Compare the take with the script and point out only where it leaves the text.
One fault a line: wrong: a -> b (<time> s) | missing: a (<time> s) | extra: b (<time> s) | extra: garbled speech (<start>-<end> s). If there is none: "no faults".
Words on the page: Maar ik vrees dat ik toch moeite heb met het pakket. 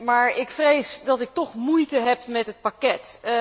no faults